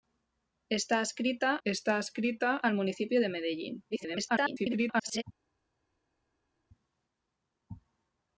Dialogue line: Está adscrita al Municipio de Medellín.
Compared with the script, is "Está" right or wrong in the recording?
right